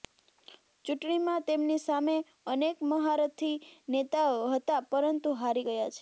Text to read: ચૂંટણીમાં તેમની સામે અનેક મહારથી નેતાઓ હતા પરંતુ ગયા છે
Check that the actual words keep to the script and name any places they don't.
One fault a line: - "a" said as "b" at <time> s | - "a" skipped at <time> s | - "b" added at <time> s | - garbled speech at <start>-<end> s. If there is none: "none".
- "હારી" added at 5.3 s